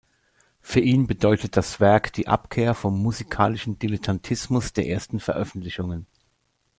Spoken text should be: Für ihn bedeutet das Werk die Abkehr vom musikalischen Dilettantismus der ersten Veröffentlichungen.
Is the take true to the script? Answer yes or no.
yes